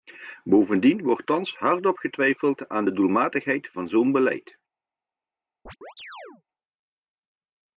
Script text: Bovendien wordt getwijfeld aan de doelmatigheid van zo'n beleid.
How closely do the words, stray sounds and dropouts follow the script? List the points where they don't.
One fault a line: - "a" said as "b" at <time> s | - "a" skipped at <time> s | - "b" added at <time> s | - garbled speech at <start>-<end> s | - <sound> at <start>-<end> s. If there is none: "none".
- "thans hardop" added at 1.2 s
- chirp at 5.7-6.4 s